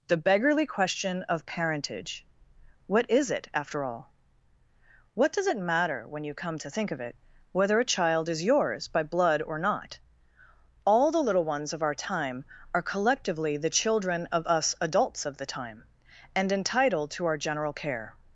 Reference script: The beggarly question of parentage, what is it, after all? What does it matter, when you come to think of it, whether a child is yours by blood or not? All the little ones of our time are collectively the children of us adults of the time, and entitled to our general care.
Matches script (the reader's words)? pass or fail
pass